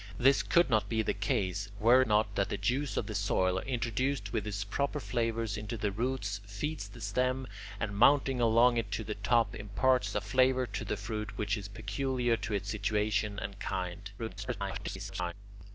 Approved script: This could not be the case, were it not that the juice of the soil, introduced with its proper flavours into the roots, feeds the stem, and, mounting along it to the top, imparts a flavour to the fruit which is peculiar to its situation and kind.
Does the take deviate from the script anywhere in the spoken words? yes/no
yes